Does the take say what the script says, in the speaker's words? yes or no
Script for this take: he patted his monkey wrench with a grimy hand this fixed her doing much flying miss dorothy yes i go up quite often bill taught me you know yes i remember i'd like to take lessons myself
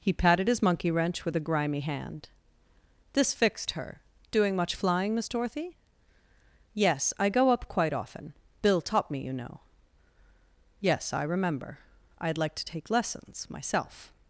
yes